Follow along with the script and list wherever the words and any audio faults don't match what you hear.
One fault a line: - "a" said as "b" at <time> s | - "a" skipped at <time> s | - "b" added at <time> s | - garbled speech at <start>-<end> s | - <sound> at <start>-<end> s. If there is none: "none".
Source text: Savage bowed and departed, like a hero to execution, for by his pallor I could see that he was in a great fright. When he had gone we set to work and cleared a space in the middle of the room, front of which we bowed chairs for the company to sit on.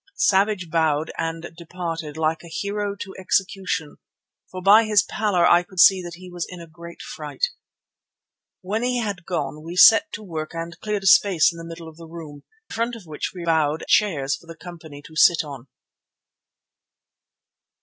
none